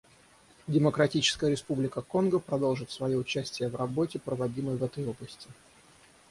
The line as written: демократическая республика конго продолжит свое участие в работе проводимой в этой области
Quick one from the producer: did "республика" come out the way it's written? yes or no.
yes